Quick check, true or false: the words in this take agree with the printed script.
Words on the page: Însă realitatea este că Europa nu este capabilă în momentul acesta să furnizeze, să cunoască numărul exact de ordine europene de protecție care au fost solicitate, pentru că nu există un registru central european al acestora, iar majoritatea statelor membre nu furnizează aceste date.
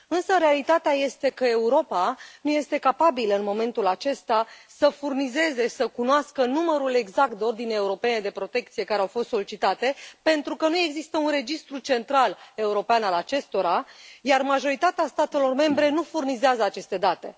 true